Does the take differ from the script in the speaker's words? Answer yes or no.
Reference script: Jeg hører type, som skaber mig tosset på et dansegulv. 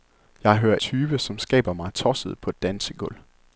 no